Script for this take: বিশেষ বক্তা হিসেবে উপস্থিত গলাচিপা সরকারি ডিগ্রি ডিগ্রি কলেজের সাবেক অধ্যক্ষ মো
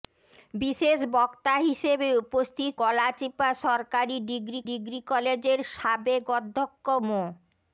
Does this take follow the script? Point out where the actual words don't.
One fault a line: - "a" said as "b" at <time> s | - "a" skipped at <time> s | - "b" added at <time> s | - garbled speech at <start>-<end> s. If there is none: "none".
none